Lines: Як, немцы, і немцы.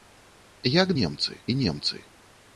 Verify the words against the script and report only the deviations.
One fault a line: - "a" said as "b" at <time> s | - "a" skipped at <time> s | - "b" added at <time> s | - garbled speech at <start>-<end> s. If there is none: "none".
none